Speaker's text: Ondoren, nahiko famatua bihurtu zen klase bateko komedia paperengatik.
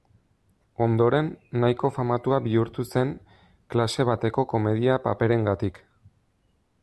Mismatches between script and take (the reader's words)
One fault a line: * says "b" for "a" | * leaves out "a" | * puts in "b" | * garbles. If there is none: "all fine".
all fine